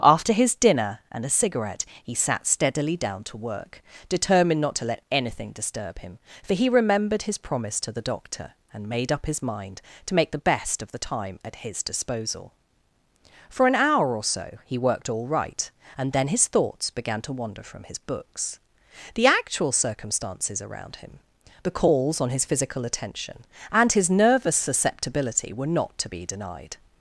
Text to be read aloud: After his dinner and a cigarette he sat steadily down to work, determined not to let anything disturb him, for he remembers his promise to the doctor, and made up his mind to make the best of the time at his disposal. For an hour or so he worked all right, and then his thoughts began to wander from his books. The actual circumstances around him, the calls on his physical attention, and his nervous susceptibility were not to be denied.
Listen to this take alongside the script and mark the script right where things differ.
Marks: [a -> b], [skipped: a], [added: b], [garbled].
After his dinner and a cigarette he sat steadily down to work, determined not to let anything disturb him, for he [remembers -> remembered] his promise to the doctor, and made up his mind to make the best of the time at his disposal. For an hour or so he worked all right, and then his thoughts began to wander from his books. The actual circumstances around him, the calls on his physical attention, and his nervous susceptibility were not to be denied.